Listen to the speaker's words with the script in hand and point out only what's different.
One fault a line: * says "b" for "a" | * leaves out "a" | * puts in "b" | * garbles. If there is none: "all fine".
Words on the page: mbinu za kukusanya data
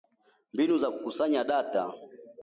all fine